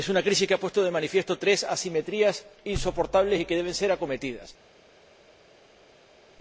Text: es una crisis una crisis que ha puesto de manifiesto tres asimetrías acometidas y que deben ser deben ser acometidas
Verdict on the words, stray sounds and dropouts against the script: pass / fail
fail